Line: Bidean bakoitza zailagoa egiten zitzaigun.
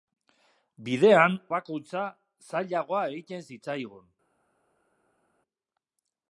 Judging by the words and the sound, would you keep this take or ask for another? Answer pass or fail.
pass